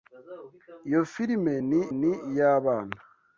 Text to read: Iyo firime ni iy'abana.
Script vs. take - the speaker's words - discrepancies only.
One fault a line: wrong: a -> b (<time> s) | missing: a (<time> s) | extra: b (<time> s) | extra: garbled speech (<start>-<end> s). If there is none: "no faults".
extra: ni (2.0 s)